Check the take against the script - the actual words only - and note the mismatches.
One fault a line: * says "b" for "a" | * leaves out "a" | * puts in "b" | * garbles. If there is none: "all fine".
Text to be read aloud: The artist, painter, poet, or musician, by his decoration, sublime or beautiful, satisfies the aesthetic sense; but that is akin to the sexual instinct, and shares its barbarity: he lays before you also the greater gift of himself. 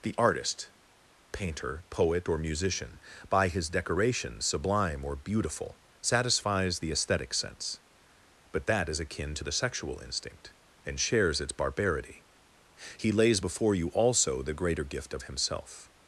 all fine